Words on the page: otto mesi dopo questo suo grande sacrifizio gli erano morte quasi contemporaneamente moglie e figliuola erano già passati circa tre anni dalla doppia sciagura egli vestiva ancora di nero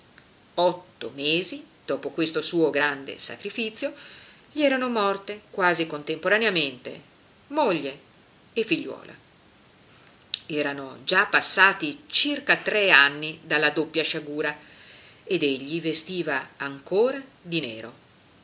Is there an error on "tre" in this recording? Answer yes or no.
no